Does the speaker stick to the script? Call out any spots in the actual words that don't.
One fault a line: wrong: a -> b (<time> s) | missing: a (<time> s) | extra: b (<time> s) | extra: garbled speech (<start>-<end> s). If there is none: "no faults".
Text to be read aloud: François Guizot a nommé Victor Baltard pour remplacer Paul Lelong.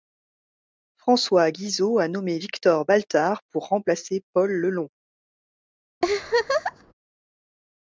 no faults